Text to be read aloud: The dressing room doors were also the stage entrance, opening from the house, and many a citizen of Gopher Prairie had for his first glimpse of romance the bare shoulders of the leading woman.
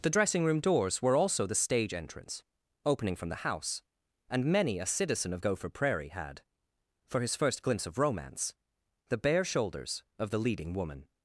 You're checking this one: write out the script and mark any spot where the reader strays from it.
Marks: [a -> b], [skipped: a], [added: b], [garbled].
The dressing room doors were also the stage entrance, opening from the house, and many a citizen of Gopher Prairie had for his first glimpse of romance the bare shoulders of the leading woman.